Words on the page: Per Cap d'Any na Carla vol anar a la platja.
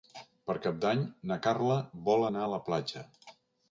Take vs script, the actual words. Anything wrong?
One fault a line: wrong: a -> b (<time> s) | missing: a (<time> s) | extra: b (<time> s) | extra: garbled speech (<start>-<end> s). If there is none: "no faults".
no faults